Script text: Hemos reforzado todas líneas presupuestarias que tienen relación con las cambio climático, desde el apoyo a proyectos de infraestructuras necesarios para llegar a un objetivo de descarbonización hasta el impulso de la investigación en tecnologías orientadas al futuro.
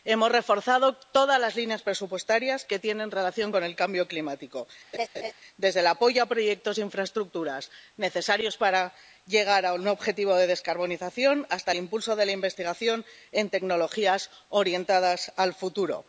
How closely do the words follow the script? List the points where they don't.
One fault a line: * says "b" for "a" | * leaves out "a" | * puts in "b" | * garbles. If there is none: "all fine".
* puts in "las"
* says "el" for "las"